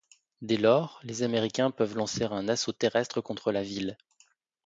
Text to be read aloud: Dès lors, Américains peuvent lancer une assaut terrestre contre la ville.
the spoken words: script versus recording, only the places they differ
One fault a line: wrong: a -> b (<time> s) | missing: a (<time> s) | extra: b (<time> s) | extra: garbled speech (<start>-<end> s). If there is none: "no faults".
extra: les (1.0 s)
wrong: une -> un (2.2 s)